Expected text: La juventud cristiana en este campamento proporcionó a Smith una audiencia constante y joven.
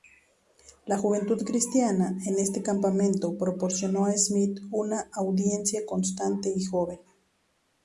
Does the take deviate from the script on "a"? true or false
false